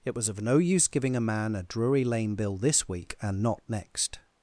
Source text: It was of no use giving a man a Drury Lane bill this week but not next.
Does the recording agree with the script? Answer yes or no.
no